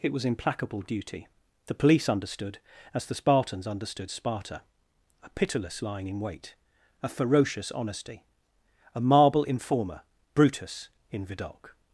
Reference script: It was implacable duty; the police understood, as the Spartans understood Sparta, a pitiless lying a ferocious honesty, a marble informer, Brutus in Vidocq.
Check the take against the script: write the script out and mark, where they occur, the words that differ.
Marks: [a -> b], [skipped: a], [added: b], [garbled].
It was implacable duty; the police understood, as the Spartans understood Sparta, a pitiless lying [added: in wait] a ferocious honesty, a marble informer, Brutus in Vidocq.